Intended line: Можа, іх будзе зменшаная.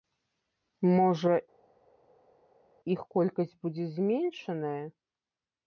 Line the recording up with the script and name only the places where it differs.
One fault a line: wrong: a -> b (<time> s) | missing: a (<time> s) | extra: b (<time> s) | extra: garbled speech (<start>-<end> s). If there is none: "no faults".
extra: колькасць (3.2 s)